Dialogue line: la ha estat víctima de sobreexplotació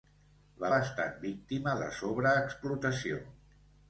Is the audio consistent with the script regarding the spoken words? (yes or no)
yes